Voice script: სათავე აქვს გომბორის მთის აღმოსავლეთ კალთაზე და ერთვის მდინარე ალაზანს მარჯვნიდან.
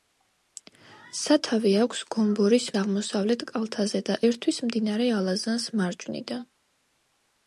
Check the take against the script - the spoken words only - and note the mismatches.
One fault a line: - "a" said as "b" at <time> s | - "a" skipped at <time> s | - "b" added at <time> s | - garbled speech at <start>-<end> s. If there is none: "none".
- "მთის" skipped at 2.6 s